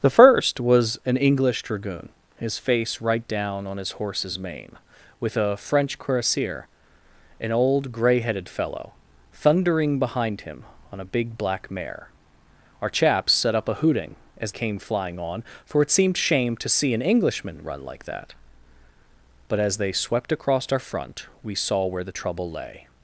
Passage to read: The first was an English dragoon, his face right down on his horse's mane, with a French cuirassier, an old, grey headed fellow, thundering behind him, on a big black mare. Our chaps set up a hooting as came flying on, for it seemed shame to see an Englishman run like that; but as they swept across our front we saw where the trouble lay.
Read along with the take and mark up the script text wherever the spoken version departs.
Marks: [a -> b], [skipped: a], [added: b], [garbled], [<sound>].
The first was an English dragoon, his face right down on his horse's mane, with a French cuirassier, an old, grey headed fellow, thundering behind him, on a big black mare. Our chaps set up a hooting as came flying on, for it seemed shame to see an Englishman run like that; but as they swept across our front we saw where the trouble lay.